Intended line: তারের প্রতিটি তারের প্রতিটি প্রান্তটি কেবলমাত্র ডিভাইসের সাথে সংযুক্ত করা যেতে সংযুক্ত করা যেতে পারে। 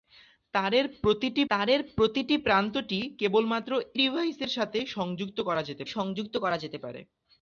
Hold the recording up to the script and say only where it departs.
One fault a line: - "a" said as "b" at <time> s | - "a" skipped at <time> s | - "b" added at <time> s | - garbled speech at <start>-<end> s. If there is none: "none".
none